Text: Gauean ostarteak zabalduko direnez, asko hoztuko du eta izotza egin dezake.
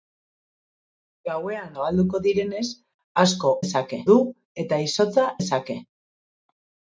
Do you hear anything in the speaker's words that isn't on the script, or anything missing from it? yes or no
yes